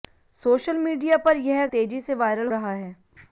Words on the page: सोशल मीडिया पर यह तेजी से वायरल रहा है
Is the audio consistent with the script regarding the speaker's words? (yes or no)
yes